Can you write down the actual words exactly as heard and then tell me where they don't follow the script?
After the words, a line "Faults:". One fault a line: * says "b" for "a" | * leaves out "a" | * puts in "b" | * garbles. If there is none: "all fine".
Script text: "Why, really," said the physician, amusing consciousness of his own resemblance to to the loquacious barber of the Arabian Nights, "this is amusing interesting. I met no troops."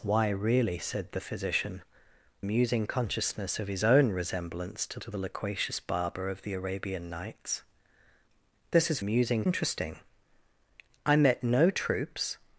"Why, really," said the physician, amusing consciousness of his own resemblance to to the loquacious barber of the Arabian Nights, "this is amusing interesting. I met no troops."
Faults:
all fine